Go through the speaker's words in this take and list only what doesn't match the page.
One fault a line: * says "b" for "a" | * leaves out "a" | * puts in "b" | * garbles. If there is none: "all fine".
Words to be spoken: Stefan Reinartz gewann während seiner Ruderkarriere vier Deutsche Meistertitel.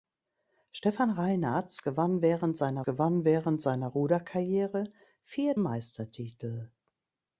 * puts in "gewann während seiner"
* leaves out "Deutsche"